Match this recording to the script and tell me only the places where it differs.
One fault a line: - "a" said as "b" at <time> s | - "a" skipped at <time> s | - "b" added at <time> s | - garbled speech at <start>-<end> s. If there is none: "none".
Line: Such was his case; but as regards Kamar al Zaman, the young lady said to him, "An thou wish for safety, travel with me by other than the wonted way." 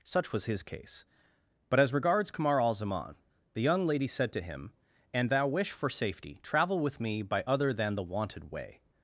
none